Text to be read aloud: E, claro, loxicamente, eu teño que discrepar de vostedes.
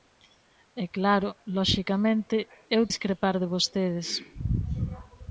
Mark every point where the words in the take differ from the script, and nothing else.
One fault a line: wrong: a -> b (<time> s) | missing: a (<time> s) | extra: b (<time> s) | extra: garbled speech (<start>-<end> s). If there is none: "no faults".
missing: teño que (2.8 s)